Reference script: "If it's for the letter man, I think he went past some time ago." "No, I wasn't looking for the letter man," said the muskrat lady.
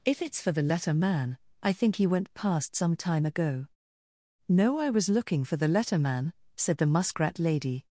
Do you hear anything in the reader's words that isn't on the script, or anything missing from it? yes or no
yes